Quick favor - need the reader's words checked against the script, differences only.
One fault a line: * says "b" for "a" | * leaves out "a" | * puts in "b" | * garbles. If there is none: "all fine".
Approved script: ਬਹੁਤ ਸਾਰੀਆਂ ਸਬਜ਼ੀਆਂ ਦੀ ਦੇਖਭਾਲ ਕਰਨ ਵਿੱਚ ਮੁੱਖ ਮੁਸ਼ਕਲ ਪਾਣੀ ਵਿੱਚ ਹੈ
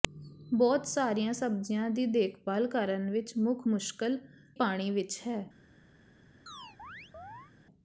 all fine